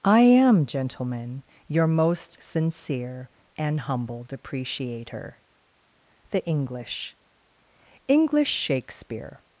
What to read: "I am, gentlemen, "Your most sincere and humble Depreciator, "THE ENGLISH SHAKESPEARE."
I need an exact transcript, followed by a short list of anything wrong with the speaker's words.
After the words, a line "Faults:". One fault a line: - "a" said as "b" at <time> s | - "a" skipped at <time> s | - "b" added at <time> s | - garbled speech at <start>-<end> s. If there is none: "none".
"I am, gentlemen, "Your most sincere and humble Depreciator, "THE ENGLISH ENGLISH SHAKESPEARE."
Faults:
- "ENGLISH" added at 8.1 s